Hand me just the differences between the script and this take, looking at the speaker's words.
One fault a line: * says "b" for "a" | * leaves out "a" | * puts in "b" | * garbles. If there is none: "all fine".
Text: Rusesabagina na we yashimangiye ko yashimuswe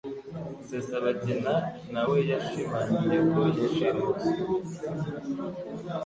all fine